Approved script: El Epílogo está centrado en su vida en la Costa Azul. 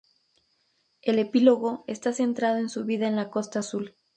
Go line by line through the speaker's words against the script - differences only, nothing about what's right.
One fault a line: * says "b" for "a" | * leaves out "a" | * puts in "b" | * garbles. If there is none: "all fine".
all fine